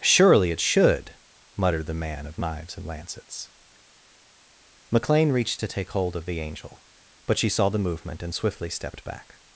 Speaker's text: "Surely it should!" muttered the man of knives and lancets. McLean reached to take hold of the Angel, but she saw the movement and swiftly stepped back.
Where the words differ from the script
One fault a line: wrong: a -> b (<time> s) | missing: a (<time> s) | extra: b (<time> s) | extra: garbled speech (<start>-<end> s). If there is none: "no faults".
no faults